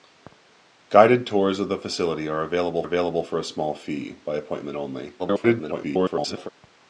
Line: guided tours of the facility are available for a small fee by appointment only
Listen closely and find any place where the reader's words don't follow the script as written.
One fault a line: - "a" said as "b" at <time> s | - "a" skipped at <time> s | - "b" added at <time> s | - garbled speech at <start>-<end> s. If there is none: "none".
- "available" added at 2.8 s
- garbled speech at 5.2-6.5 s